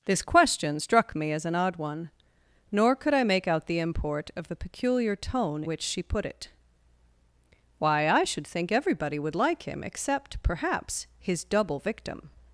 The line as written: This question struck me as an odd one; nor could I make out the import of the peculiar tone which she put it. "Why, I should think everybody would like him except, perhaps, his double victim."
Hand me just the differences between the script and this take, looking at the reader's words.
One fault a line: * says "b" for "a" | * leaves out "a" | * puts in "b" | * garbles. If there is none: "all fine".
all fine